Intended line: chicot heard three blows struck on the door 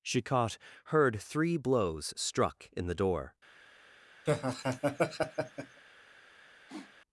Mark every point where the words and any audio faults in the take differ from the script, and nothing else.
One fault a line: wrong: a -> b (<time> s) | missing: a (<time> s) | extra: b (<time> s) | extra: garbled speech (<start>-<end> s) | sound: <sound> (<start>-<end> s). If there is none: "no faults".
wrong: on -> in (2.7 s)
sound: laugh (4.3-5.8 s)
sound: sniff (6.7-6.9 s)